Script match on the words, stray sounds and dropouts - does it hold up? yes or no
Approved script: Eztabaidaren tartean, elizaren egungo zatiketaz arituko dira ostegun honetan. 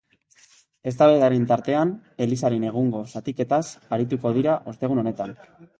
yes